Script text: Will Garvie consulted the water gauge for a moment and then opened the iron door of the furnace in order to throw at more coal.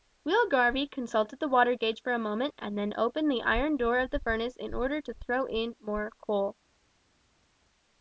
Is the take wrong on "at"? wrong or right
wrong